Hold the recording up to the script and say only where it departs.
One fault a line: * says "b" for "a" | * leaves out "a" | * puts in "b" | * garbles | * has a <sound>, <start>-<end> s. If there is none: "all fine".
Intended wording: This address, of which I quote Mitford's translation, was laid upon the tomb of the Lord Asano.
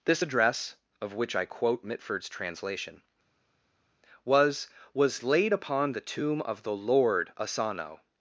* puts in "was"